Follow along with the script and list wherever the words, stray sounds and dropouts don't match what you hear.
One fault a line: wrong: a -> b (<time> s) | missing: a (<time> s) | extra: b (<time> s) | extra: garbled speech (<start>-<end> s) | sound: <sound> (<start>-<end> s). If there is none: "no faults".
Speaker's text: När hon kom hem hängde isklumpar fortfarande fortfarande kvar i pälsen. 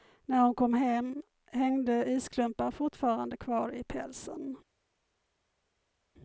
missing: fortfarande (3.4 s)